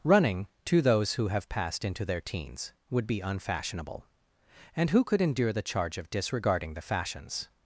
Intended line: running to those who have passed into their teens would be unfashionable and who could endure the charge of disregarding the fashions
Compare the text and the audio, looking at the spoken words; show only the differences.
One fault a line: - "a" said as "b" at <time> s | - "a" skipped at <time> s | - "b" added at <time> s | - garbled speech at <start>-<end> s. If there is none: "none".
none